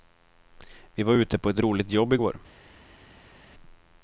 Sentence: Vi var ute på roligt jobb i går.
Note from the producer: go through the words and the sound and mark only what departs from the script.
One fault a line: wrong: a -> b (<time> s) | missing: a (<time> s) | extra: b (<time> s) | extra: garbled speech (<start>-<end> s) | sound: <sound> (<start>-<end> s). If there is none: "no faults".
extra: ett (1.5 s)